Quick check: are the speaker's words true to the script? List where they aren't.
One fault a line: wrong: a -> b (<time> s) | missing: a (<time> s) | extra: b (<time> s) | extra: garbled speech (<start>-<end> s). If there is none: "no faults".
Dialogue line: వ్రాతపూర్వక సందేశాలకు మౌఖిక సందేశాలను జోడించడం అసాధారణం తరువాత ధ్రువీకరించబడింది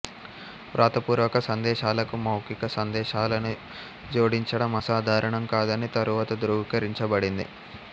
extra: కాదని (5.5 s)